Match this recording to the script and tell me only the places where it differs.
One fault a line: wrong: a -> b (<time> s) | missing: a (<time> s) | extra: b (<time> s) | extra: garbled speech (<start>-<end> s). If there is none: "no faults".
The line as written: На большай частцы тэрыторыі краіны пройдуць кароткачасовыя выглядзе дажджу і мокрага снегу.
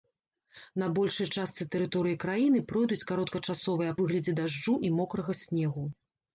no faults